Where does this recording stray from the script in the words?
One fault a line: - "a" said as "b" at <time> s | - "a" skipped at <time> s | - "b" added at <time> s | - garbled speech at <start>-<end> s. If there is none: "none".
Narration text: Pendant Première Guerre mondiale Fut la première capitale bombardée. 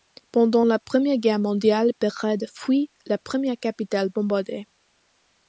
- "la" added at 0.6 s
- "Belgrade" added at 2.0 s